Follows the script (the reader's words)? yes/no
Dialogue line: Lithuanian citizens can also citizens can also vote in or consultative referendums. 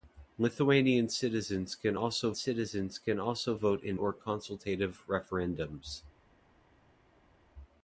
yes